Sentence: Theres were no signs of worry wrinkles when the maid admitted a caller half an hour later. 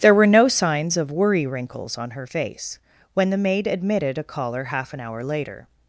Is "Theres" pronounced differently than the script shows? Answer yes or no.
yes